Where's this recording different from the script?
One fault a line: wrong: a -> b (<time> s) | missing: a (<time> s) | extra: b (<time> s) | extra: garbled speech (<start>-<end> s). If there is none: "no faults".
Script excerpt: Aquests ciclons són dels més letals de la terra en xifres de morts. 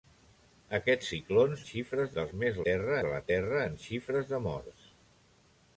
wrong: són -> xifres (1.7 s)
wrong: letals -> terra (2.7 s)